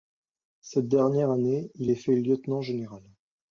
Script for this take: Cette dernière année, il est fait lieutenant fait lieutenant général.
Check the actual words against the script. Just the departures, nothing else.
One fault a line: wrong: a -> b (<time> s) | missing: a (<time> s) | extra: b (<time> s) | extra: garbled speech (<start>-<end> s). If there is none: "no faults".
missing: fait lieutenant (2.6 s)